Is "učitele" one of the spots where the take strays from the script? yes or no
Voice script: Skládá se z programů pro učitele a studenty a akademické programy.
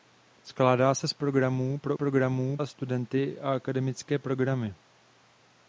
yes